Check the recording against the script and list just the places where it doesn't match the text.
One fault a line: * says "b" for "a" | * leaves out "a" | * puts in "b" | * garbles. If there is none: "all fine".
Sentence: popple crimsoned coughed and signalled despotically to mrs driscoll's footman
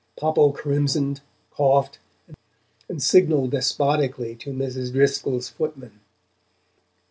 all fine